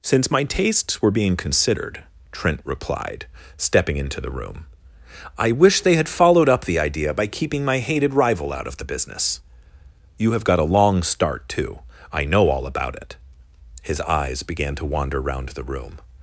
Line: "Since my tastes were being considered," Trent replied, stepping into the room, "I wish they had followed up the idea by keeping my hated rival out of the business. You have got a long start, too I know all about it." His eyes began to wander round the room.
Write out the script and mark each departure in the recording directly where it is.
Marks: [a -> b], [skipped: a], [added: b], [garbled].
"Since my tastes were being considered," Trent replied, stepping into the room, "I wish they had followed up the idea by keeping my hated rival out of the business. You have got a long start, too I know all about it." His eyes began to wander round the room.